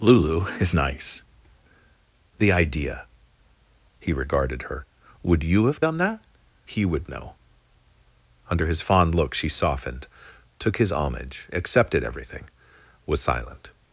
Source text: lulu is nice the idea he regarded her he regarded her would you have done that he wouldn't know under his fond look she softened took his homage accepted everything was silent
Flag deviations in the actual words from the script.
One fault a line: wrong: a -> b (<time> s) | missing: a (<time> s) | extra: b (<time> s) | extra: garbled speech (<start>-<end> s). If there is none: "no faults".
missing: he regarded her (4.9 s)
wrong: wouldn't -> would (6.8 s)